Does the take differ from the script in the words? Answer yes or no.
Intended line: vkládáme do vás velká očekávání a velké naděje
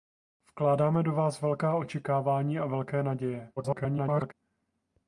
yes